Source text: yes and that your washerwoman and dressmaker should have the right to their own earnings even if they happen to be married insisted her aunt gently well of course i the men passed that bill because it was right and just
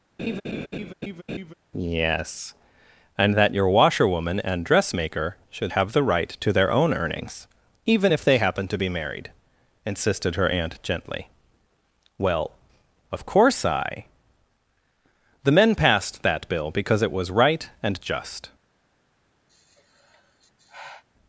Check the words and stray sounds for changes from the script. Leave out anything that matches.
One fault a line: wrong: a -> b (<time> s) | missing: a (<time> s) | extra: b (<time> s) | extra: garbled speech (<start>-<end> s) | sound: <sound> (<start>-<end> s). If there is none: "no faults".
sound: laugh (0.2-1.5 s)
sound: sigh (19.5-21.0 s)